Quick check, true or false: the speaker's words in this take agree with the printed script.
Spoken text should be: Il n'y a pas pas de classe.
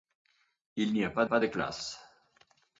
true